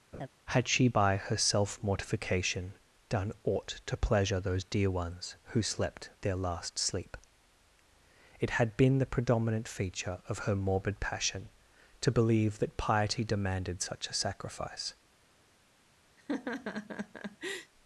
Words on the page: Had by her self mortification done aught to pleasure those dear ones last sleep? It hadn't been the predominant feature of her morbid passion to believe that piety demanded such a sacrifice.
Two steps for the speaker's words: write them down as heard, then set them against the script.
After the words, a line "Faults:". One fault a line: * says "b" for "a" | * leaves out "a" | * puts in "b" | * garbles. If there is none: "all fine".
Had she by her self mortification done aught to pleasure those dear ones who slept their last sleep? It had been the predominant feature of her morbid passion to believe that piety demanded such a sacrifice.
Faults:
* puts in "she"
* puts in "who slept their"
* says "had" for "hadn't"